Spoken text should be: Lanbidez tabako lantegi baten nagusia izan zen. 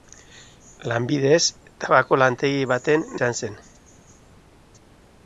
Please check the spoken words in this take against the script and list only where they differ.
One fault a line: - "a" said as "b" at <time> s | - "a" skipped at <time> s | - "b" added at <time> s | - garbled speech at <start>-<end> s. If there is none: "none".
- "nagusia" skipped at 3.1 s